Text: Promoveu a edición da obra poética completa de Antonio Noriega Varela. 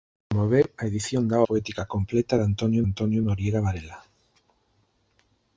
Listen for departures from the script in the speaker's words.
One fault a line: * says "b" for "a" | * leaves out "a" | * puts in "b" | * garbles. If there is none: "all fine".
* leaves out "obra"
* puts in "Antonio"